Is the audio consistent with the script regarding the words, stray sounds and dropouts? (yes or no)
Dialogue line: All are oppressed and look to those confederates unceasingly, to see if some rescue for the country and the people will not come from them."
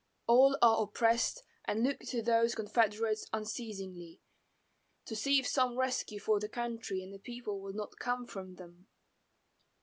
yes